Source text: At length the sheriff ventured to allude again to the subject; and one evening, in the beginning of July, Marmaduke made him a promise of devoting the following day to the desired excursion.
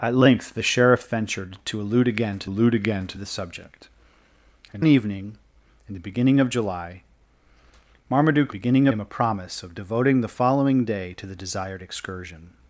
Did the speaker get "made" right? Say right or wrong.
wrong